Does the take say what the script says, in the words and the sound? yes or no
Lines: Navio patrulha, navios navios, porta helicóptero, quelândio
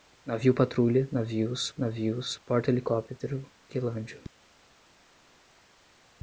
yes